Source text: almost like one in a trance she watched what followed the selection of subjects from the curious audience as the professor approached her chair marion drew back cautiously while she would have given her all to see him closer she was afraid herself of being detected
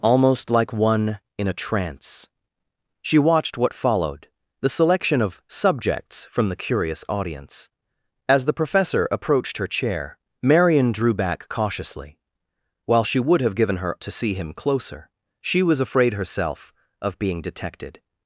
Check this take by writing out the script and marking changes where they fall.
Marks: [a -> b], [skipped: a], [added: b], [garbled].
almost like one in a trance she watched what followed the selection of subjects from the curious audience as the professor approached her chair marion drew back cautiously while she would have given her [skipped: all] to see him closer she was afraid herself of being detected